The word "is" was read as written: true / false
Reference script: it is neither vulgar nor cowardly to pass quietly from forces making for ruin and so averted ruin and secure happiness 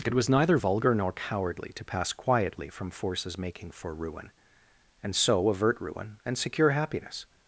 false